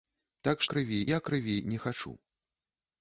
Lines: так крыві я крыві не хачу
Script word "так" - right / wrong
right